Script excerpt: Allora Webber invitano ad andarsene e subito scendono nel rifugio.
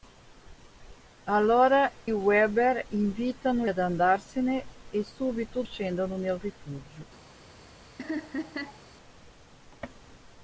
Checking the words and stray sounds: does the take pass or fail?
fail